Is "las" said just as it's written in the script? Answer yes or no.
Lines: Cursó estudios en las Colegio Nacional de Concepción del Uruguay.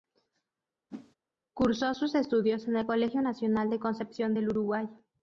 no